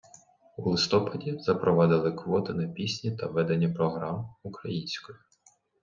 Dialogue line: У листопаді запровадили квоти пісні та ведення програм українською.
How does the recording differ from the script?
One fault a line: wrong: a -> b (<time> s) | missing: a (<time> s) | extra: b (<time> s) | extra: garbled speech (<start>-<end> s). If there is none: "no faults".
extra: на (2.5 s)